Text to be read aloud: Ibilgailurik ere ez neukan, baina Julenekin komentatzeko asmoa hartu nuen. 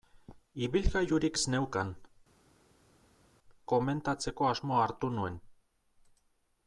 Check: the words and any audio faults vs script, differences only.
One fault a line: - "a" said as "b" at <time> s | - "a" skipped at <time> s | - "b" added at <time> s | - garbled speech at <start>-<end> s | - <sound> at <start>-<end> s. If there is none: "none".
- "ere" skipped at 1.4 s
- "baina Julenekin" skipped at 1.9 s